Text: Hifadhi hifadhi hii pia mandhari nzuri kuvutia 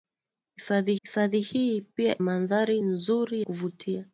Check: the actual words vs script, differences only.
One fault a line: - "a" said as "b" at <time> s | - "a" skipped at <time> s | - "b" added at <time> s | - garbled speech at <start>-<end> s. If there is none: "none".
none